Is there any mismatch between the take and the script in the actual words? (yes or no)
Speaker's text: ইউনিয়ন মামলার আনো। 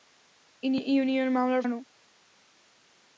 no